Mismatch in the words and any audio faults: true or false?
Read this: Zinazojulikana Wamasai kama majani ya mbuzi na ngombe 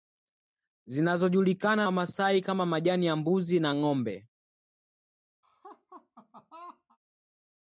true